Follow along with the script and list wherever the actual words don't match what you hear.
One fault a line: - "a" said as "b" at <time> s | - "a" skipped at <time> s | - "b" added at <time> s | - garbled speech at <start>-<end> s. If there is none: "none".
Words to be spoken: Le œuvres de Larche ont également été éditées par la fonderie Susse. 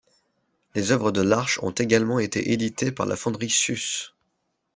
- "Le" said as "Les" at 0.7 s